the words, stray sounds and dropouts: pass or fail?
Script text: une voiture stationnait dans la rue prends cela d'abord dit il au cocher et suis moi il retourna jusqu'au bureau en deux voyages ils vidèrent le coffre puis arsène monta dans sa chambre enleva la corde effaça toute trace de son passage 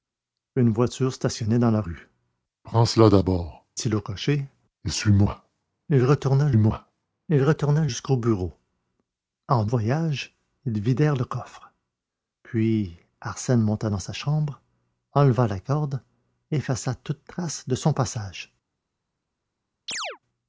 fail